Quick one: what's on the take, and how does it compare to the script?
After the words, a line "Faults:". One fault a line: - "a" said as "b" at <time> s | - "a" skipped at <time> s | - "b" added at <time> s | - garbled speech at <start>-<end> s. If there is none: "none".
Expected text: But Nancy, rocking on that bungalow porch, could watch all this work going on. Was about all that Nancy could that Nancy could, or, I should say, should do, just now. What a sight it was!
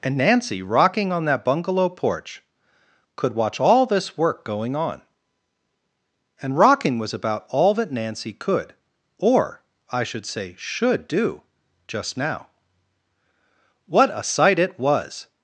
And Nancy, rocking on that bungalow porch, could watch all this work going on. And rocking was about all that Nancy could, or, I should say, should do, just now. What a sight it was!
Faults:
- "But" said as "And" at 0.0 s
- "And rocking" added at 6.4 s
- "that Nancy could" skipped at 8.7 s